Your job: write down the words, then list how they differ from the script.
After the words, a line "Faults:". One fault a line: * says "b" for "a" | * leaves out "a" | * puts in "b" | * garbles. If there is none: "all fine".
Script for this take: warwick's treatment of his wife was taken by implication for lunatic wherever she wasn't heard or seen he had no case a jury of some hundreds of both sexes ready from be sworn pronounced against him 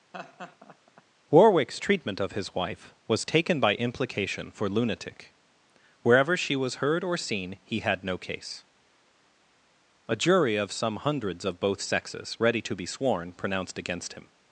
warwick's treatment of his wife was taken by implication for lunatic wherever she was heard or seen he had no case a jury of some hundreds of both sexes ready to be sworn pronounced against him
Faults:
* says "was" for "wasn't"
* says "to" for "from"